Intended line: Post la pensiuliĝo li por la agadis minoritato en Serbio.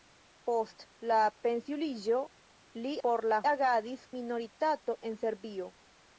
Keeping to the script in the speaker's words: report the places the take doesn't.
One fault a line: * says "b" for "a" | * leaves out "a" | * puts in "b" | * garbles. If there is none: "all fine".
all fine